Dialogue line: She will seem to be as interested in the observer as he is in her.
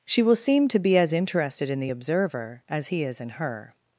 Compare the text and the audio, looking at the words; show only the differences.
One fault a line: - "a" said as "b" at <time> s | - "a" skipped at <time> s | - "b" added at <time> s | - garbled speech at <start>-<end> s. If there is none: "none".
none